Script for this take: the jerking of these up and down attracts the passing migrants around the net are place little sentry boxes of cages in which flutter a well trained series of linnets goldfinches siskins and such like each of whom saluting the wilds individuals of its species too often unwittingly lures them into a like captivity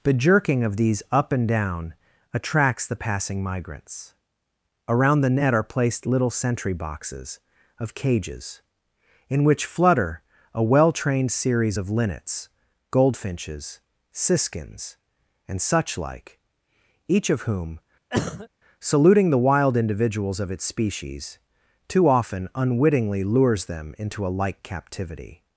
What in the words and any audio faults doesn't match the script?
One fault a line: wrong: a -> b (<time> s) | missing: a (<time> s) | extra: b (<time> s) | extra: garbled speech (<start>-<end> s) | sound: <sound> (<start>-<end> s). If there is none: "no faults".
wrong: place -> placed (5.6 s)
sound: cough (18.1-18.5 s)
wrong: wilds -> wild (19.4 s)